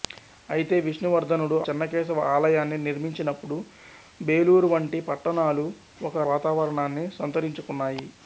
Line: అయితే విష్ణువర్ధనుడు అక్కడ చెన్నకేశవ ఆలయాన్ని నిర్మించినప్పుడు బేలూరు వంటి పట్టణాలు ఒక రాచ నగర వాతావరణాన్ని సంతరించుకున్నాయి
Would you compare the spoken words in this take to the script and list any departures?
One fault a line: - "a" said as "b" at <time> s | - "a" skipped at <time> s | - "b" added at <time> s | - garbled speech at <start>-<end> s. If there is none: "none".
- "అక్కడ" skipped at 1.6 s
- "రాచ నగర" skipped at 6.2 s